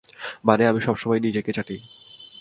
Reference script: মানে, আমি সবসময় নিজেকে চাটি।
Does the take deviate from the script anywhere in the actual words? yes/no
no